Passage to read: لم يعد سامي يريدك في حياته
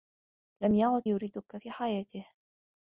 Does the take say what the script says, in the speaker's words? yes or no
no